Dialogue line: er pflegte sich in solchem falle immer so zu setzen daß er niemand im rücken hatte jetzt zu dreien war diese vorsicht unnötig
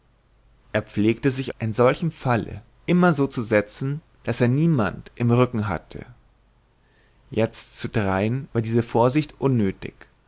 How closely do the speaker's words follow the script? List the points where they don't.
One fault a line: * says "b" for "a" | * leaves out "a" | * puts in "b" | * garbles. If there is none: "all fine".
all fine